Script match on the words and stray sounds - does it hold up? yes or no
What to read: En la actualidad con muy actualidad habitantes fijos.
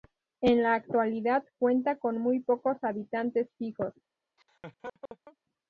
no